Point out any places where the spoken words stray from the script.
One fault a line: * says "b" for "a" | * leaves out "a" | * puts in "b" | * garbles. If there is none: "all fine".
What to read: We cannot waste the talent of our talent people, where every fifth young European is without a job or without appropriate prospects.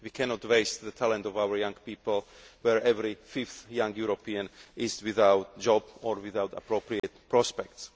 * says "young" for "talent"